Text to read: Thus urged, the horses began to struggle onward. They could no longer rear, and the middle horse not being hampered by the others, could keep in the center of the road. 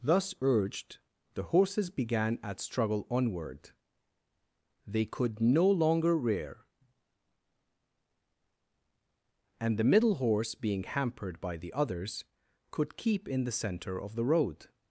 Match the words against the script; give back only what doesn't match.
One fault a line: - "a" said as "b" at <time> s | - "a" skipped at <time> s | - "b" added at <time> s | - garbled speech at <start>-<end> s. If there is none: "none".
- "to" said as "at" at 2.4 s
- "not" skipped at 10.6 s